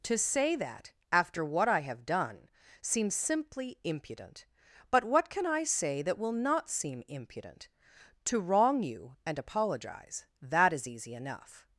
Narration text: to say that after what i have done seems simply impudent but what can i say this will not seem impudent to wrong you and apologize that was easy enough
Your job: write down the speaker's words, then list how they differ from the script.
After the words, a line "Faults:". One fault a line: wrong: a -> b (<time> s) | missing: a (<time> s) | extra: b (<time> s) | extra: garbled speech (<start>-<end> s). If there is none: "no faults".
to say that after what i have done seems simply impudent but what can i say that will not seem impudent to wrong you and apologize that is easy enough
Faults:
wrong: this -> that (6.0 s)
wrong: was -> is (10.7 s)